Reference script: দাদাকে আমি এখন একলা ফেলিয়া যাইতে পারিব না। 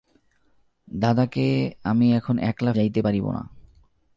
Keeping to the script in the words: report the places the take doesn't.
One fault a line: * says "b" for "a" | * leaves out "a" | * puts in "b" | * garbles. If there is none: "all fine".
* leaves out "ফেলিয়া"